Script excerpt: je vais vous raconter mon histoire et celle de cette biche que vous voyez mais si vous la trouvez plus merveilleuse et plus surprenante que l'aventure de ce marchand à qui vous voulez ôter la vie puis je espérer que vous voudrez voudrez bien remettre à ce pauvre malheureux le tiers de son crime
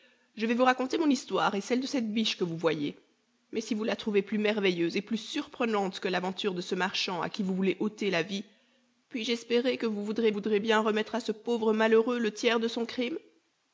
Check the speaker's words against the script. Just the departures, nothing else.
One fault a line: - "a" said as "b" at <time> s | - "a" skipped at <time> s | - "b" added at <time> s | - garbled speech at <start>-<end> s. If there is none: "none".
none